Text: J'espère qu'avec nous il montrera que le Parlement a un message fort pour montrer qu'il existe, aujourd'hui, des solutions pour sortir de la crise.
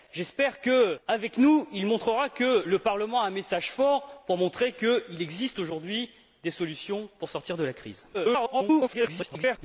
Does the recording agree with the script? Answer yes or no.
no